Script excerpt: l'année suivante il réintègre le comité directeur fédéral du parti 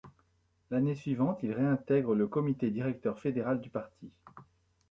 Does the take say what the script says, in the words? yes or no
yes